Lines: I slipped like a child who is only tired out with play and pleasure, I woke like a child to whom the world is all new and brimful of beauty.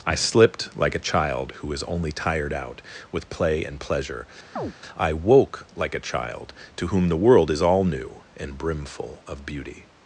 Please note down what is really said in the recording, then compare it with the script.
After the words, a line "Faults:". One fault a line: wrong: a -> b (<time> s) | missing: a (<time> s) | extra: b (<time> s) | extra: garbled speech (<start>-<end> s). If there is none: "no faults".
I slipped like a child who is only tired out with play and pleasure, I woke like a child to whom the world is all new and brimful of beauty.
Faults:
no faults